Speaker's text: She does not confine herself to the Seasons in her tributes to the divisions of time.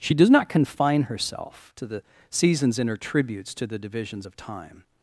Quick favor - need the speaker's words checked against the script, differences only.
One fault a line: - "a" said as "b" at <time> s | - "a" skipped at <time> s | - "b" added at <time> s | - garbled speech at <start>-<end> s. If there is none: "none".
none